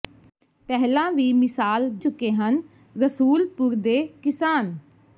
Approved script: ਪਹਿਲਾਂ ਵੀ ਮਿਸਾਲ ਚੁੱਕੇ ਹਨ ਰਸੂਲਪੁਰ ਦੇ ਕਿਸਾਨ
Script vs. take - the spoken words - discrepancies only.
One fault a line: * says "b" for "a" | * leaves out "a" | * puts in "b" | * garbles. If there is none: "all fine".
all fine